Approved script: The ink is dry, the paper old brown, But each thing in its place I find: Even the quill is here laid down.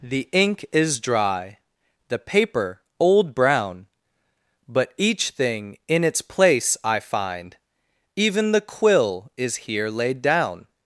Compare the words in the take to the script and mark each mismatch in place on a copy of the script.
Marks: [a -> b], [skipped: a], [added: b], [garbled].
The ink is dry, the paper old brown, But each thing in its place I find: Even the quill is here laid down.